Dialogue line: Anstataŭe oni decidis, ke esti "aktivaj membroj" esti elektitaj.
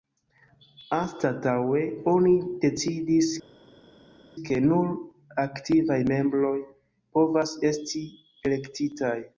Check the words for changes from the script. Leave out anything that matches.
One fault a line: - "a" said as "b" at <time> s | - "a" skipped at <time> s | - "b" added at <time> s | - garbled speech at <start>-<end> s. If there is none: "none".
- "esti" said as "nur" at 4.6 s
- "povas" added at 7.2 s